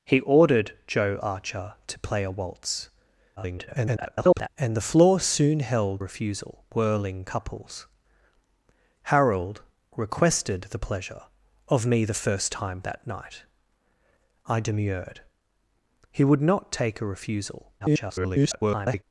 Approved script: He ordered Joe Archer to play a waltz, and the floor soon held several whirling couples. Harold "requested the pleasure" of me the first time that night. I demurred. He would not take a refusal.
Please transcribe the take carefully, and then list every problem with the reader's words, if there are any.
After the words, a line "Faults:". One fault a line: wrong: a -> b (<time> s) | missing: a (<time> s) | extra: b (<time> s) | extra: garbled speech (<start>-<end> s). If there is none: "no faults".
He ordered Joe Archer to play a waltz, [garbled] and the floor soon held refusal whirling couples. Harold "requested the pleasure" of me the first time that night. I demurred. He would not take a refusal. [garbled]
Faults:
extra: garbled speech (3.4-4.5 s)
wrong: several -> refusal (6.0 s)
extra: garbled speech (17.8-19.0 s)